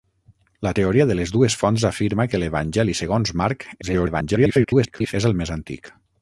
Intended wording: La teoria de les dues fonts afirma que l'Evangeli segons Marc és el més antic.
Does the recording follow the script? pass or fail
fail